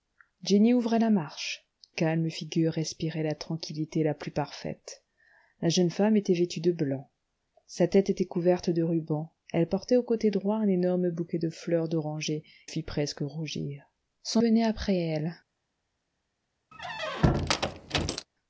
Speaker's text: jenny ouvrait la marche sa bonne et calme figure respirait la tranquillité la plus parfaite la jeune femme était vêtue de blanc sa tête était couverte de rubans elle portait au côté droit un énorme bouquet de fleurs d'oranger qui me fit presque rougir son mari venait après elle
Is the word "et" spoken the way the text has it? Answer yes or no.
no